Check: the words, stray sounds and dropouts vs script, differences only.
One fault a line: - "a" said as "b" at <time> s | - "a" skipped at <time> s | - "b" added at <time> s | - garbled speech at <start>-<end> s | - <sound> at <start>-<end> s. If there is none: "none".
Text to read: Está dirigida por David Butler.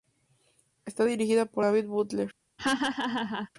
- laugh at 2.6-3.5 s